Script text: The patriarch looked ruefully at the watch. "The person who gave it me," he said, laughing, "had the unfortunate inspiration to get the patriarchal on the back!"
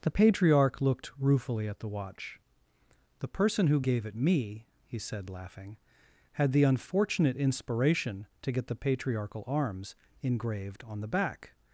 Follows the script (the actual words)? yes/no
no